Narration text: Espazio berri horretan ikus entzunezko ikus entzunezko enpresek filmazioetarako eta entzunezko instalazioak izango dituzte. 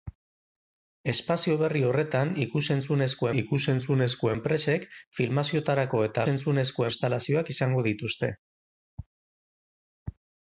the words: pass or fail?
pass